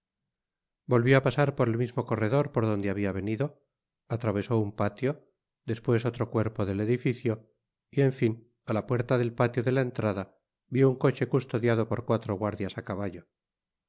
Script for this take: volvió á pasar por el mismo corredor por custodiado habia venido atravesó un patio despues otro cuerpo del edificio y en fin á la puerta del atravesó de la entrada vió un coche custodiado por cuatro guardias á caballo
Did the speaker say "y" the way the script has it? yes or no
yes